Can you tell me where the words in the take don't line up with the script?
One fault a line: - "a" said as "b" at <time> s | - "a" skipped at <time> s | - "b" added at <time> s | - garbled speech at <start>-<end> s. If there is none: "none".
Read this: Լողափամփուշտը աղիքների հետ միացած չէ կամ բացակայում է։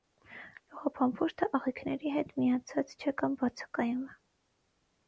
none